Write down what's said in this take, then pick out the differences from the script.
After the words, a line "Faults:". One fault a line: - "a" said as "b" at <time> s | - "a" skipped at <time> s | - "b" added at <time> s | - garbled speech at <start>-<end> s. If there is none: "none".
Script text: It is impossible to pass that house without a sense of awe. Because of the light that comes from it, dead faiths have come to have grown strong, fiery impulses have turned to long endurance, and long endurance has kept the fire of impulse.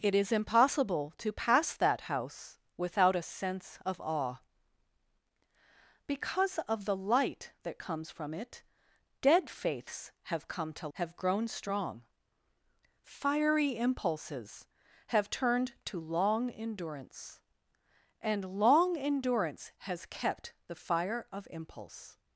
It is impossible to pass that house without a sense of awe. Because of the light that comes from it, dead faiths have come to have grown strong, fiery impulses have turned to long endurance, and long endurance has kept the fire of impulse.
Faults:
none